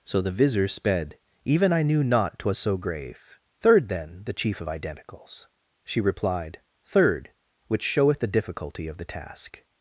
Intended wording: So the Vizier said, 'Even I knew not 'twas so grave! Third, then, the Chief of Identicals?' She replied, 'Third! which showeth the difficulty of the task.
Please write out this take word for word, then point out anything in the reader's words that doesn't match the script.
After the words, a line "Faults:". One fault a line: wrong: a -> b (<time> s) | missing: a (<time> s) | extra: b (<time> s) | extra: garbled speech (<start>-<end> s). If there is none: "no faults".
So the Vizier sped, 'Even I knew not 'twas so grave! Third, then, the Chief of Identicals?' She replied, 'Third! which showeth the difficulty of the task.
Faults:
wrong: said -> sped (0.7 s)